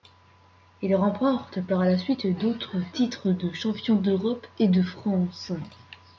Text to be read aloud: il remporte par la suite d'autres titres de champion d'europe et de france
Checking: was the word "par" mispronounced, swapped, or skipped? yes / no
no